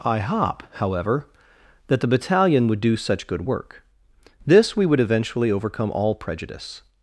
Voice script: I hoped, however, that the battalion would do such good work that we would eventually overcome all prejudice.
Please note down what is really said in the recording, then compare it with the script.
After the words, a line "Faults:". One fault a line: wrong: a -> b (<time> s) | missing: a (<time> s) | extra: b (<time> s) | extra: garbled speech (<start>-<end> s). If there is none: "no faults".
I hop, however, that the battalion would do such good work this we would eventually overcome all prejudice.
Faults:
wrong: hoped -> hop (0.2 s)
wrong: that -> this (4.5 s)